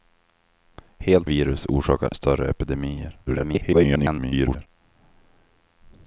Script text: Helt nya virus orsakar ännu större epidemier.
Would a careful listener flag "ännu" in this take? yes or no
yes